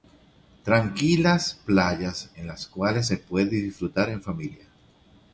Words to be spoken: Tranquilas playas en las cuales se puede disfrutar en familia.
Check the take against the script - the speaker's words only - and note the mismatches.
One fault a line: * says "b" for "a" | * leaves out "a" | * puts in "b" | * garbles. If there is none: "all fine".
all fine